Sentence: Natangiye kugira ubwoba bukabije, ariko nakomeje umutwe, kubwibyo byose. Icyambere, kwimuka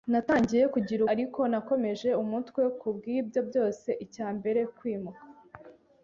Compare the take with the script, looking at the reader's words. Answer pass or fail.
fail